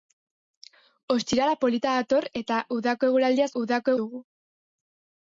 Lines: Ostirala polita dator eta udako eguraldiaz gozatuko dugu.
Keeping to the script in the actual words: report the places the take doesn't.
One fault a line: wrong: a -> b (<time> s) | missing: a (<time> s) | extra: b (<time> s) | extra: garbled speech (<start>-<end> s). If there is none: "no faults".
wrong: gozatuko -> udako (3.6 s)